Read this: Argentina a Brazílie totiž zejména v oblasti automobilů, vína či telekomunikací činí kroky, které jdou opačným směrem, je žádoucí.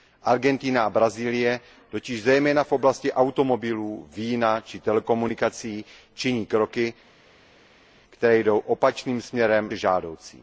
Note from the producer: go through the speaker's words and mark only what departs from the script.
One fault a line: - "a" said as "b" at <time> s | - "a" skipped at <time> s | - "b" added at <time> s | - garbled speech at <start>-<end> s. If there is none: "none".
none